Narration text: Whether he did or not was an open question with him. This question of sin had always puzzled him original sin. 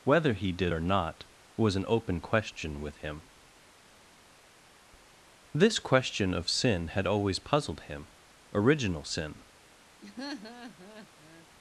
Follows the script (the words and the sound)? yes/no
no